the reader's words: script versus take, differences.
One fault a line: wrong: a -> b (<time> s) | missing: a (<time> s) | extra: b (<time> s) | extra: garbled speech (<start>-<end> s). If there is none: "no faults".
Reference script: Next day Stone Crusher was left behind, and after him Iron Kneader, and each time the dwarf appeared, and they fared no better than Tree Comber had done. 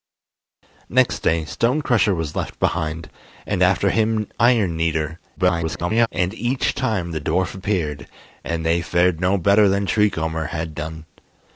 extra: garbled speech (5.4-6.1 s)